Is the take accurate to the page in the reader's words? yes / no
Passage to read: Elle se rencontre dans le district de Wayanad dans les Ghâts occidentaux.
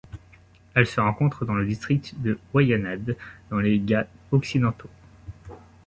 yes